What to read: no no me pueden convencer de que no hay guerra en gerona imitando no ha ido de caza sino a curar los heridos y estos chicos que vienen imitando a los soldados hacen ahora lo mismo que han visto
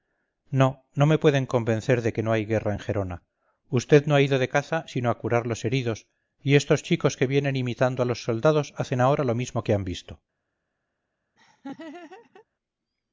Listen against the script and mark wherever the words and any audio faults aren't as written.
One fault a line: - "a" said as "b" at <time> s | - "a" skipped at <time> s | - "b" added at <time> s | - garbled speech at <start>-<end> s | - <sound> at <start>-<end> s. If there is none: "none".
- "imitando" said as "usted" at 3.7 s
- laugh at 11.4-12.5 s